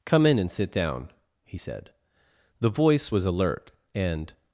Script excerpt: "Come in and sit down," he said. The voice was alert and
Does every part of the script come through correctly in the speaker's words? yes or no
yes